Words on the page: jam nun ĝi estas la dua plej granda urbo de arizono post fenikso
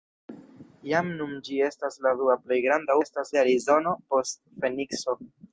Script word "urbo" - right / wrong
wrong